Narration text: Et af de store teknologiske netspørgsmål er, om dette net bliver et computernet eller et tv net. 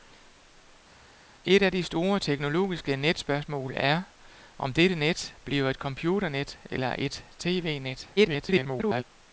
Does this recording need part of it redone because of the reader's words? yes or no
yes